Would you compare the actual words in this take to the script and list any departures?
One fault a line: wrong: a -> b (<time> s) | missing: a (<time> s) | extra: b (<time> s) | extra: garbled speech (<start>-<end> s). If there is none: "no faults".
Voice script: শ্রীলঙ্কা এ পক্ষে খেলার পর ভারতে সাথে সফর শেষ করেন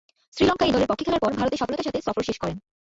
extra: দলের (0.7 s)
extra: সফলতার (1.6 s)